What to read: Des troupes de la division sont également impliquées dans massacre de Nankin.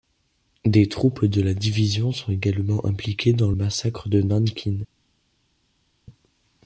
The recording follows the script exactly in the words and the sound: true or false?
true